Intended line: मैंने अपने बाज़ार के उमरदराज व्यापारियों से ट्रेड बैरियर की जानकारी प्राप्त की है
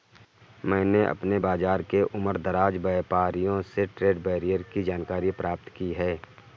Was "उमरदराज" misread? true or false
false